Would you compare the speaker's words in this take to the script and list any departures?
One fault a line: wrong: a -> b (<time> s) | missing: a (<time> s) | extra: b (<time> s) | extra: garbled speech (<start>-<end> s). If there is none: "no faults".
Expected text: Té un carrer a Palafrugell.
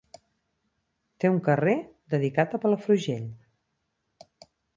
extra: dedicat (2.1 s)